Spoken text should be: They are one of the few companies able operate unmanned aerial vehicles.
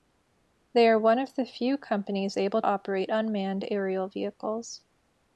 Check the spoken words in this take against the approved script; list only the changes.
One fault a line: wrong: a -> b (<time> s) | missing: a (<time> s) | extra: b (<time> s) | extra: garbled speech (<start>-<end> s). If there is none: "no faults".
no faults